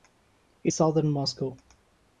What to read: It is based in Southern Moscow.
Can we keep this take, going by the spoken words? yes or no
no